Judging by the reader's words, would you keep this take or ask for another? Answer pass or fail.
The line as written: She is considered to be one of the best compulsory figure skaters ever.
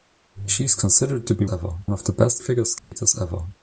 fail